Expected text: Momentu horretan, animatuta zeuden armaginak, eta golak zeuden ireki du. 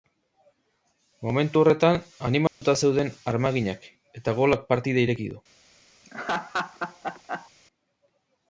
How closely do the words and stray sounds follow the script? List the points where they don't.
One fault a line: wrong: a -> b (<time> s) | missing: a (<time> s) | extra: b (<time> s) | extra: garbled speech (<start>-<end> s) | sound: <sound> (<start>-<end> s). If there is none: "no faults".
sound: dropout (2.5-2.6 s)
wrong: zeuden -> partida (4.7 s)
sound: laugh (6.0-7.5 s)